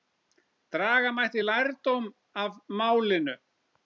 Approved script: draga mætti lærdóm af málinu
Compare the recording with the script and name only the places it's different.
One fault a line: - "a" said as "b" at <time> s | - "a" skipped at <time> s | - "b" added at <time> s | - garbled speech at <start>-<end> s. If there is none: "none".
none